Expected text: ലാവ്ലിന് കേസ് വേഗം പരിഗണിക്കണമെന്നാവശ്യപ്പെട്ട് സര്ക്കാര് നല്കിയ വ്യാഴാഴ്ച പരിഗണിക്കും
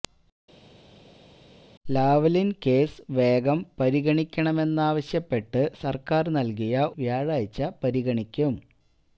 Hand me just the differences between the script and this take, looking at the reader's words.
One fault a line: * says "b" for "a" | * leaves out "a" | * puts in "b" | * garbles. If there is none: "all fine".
all fine